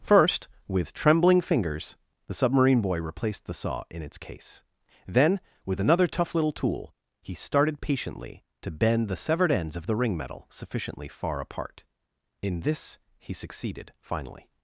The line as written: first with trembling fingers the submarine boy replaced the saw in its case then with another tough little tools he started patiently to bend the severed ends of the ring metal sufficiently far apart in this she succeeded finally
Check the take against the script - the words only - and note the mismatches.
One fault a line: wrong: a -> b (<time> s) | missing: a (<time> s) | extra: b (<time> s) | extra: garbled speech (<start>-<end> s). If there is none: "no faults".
wrong: tools -> tool (6.5 s)
wrong: she -> he (13.2 s)